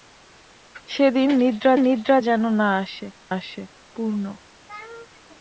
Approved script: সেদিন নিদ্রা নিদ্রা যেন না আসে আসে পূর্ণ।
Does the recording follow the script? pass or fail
pass